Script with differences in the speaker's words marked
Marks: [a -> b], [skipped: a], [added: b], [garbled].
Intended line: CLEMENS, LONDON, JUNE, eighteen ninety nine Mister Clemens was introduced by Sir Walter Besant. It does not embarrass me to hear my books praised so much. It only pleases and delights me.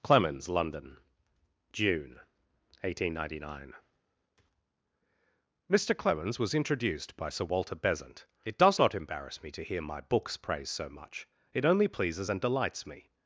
CLEMENS, LONDON, JUNE, eighteen ninety nine Mister Clemens was introduced by Sir Walter Besant. It does not embarrass me to hear my books praised so much. It only pleases and delights me.